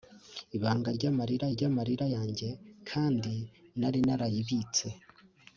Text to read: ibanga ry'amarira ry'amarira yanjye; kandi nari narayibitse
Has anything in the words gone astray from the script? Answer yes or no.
no